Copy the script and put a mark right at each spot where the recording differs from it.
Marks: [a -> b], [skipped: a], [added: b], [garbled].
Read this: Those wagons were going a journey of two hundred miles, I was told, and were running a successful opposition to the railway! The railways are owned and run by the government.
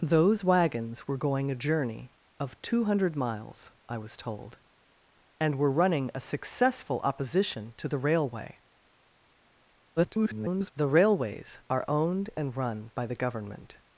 Those wagons were going a journey of two hundred miles, I was told, and were running a successful opposition to the railway! [garbled] The railways are owned and run by the government.